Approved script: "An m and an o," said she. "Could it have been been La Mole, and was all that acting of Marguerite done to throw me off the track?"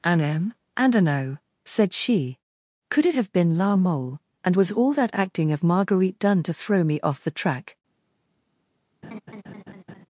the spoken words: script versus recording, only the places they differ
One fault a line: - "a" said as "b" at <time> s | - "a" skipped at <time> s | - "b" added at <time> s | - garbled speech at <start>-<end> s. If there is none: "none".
- "been" skipped at 3.6 s